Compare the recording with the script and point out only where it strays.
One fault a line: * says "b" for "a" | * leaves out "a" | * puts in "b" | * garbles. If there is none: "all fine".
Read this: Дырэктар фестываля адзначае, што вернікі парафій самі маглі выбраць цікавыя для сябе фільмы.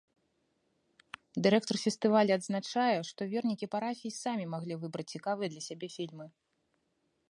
all fine